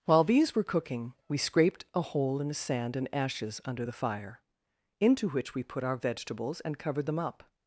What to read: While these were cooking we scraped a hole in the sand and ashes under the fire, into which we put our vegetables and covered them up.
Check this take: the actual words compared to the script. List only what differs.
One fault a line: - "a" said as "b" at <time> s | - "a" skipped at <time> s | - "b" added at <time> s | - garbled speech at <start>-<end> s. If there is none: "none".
none